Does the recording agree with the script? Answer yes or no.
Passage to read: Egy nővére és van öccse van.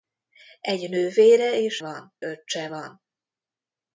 yes